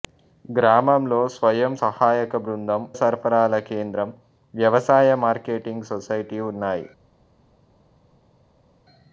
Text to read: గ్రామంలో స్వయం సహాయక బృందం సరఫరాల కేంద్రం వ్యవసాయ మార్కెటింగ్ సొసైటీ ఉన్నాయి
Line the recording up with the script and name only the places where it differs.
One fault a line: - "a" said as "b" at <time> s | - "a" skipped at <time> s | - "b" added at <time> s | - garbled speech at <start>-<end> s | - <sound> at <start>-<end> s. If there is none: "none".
none